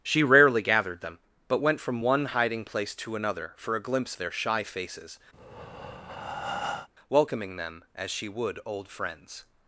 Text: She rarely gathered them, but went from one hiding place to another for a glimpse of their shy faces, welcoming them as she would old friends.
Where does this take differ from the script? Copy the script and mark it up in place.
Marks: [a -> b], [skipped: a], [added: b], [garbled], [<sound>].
She rarely gathered them, but went from one hiding place to another for a glimpse [skipped: of] their shy faces, [breath] welcoming them as she would old friends.